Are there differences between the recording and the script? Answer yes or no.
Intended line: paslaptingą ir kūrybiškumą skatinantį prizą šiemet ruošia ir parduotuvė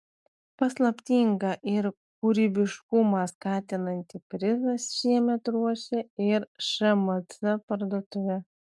yes